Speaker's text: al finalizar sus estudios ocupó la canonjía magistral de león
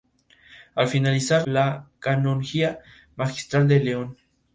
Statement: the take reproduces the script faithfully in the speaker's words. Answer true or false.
false